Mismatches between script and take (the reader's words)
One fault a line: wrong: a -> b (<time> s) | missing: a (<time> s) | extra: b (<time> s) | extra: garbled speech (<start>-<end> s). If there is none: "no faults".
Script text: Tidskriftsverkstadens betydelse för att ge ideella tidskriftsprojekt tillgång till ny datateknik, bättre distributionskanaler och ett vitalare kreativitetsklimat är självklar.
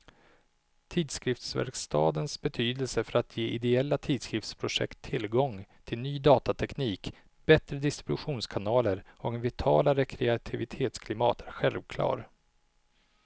no faults